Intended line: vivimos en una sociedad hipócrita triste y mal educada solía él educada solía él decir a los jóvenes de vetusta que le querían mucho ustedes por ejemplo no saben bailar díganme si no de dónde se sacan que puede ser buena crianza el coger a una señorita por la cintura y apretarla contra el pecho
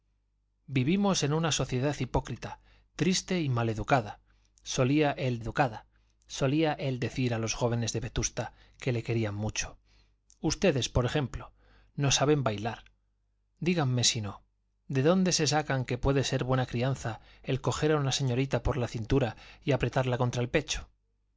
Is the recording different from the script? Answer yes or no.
no